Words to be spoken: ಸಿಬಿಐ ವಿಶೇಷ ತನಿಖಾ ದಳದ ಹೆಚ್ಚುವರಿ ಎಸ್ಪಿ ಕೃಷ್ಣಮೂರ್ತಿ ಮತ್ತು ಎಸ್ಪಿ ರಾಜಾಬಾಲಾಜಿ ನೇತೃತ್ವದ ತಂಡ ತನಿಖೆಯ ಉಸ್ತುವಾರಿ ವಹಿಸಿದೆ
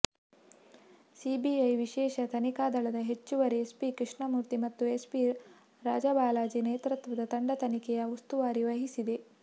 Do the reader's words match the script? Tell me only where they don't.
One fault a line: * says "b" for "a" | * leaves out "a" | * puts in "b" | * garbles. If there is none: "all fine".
all fine